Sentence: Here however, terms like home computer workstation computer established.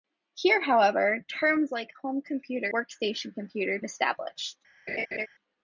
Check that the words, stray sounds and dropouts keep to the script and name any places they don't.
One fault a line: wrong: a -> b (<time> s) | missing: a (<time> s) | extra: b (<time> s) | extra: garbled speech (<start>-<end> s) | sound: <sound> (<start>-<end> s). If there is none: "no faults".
sound: laugh (4.9-5.3 s)